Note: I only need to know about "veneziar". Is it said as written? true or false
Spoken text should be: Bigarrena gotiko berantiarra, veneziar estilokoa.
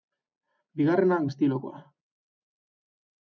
false